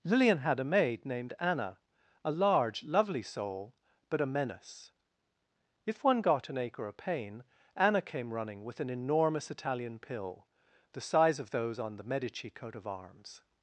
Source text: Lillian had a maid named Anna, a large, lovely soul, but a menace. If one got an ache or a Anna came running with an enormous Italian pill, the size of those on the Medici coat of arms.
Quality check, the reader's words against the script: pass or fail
fail